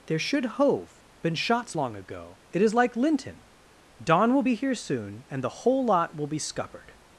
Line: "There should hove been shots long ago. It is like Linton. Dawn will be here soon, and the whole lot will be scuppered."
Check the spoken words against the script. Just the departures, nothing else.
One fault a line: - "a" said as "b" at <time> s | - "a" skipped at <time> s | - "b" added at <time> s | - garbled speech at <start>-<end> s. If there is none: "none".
none